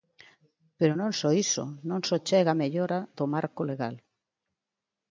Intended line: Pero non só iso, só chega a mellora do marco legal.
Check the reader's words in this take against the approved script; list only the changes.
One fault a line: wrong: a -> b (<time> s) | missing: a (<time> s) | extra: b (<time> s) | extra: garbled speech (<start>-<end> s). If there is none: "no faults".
extra: non (1.9 s)